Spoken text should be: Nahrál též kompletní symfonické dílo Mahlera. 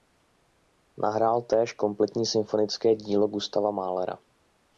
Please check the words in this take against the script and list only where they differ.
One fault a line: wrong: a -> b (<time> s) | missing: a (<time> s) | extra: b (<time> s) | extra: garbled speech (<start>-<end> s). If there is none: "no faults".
extra: Gustava (3.3 s)